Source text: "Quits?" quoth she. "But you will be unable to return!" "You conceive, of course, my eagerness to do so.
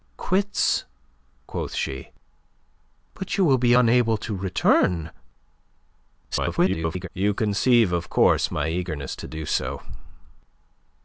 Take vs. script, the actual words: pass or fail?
fail